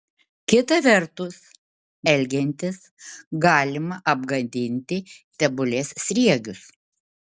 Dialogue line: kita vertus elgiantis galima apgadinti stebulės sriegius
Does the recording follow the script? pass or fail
pass